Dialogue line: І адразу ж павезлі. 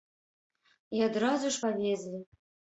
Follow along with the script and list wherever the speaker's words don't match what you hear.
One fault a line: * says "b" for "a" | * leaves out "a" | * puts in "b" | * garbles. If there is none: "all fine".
all fine